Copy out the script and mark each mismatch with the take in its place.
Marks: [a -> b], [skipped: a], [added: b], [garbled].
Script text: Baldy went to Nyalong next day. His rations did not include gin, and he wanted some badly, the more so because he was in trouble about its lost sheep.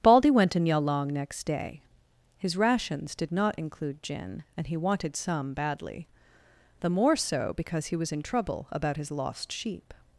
Baldy went to Nyalong next day. His rations did not include gin, and he wanted some badly, the more so because he was in trouble about [its -> his] lost sheep.